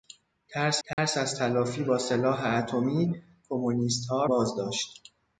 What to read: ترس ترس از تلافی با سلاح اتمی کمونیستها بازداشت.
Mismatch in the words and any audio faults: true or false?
true